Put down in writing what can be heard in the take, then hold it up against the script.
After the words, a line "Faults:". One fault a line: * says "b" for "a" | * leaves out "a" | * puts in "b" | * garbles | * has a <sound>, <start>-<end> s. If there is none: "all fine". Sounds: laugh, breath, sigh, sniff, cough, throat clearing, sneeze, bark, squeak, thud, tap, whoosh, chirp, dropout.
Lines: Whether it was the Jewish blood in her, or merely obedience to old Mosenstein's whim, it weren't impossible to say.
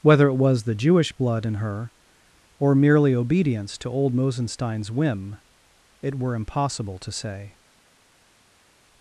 Whether it was the Jewish blood in her, or merely obedience to old Mosenstein's whim, it were impossible to say.
Faults:
* says "were" for "weren't"